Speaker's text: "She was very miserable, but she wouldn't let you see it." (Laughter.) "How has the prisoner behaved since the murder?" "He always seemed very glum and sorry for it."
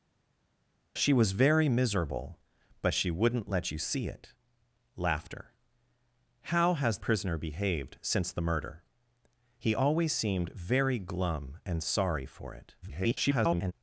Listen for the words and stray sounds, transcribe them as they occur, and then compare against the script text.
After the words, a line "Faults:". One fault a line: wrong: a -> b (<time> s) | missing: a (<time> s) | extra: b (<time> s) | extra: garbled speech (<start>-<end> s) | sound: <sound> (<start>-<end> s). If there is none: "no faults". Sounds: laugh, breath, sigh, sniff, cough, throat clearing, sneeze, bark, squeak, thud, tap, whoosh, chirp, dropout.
"She was very miserable, but she wouldn't let you see it." (Laughter.) "How has prisoner behaved since the murder?" "He always seemed very glum and sorry for it." [garbled]
Faults:
missing: the (7.0 s)
extra: garbled speech (12.8-13.7 s)